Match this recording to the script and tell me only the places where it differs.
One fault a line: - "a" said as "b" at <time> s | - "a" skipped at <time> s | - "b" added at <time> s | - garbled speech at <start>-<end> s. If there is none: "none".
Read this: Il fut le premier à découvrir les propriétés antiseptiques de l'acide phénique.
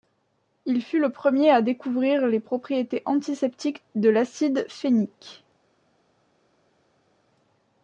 none